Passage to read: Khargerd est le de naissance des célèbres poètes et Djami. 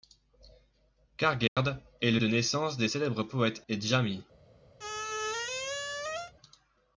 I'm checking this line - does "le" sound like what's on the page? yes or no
yes